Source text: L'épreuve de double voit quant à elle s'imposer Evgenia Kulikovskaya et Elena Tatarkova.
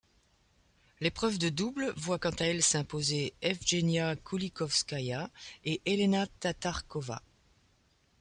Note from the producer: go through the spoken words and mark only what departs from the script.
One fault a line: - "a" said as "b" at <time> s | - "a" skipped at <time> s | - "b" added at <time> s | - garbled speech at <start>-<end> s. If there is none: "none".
none